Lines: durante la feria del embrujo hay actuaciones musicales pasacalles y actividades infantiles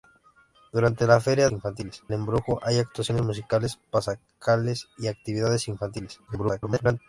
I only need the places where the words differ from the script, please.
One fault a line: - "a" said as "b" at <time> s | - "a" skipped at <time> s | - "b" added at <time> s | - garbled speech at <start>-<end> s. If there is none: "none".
- "del" said as "infantiles" at 1.5 s
- garbled speech at 6.3-7.0 s